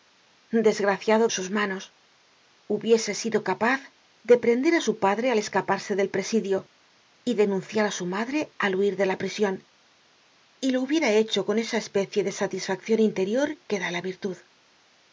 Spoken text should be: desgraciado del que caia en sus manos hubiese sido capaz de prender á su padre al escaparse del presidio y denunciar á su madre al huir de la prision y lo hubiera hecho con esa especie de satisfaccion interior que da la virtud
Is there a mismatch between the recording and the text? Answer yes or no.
yes